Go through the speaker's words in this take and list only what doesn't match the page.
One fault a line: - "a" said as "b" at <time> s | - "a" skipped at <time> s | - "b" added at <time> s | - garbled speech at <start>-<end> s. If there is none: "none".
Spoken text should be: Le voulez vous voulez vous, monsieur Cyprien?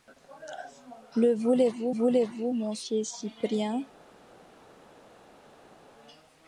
none